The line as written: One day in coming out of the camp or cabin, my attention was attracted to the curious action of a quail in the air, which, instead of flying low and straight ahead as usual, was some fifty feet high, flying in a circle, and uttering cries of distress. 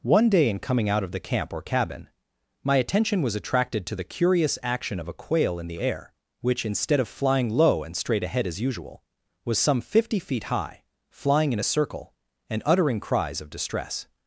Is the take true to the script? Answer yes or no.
yes